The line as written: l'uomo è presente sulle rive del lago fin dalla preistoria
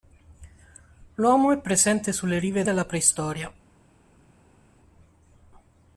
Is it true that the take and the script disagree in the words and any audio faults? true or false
true